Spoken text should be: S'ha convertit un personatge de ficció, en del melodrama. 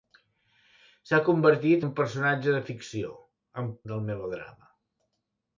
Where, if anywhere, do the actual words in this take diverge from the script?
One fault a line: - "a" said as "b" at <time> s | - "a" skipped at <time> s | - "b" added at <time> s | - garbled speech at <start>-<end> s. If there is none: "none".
none